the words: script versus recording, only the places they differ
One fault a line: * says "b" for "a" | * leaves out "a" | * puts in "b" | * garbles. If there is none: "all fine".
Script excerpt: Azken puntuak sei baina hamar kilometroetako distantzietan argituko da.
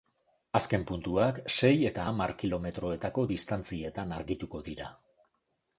* says "eta" for "baina"
* says "dira" for "da"